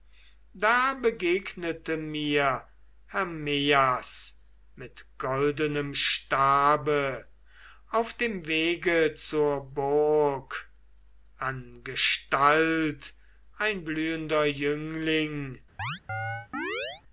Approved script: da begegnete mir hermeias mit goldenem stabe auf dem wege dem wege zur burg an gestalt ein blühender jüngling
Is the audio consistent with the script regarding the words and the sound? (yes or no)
no